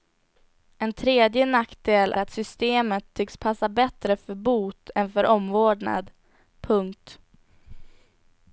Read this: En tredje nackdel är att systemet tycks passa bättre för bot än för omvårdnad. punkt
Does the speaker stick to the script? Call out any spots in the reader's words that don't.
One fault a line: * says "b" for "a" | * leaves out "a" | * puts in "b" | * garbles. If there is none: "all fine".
* leaves out "är"